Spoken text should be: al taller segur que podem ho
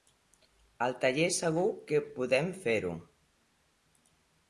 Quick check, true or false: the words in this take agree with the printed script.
false